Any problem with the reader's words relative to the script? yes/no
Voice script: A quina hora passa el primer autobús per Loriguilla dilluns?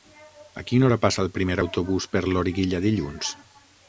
no